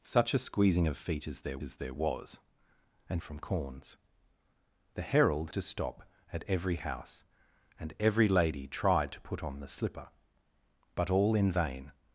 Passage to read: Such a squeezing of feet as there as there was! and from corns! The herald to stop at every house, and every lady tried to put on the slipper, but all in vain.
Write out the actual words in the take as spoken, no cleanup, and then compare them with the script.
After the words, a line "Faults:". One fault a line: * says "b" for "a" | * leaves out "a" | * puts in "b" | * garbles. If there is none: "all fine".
Such a squeezing of feet as there as there was! and from corns! The herald to stop at every house, and every lady tried to put on the slipper, but all in vain.
Faults:
all fine